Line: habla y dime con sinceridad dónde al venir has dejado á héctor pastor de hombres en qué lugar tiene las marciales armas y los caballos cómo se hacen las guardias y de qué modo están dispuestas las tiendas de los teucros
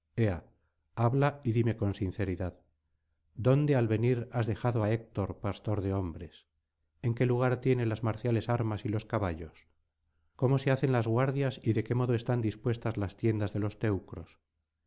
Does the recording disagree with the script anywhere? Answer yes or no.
no